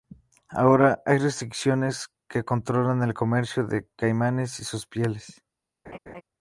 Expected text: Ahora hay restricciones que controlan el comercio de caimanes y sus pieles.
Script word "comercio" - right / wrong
right